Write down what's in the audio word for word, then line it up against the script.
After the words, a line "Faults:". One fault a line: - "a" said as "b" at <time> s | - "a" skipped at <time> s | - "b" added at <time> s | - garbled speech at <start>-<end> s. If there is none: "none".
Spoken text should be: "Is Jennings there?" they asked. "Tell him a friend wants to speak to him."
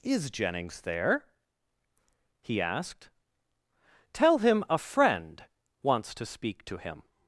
"Is Jennings there?" he asked. "Tell him a friend wants to speak to him."
Faults:
- "they" said as "he" at 2.4 s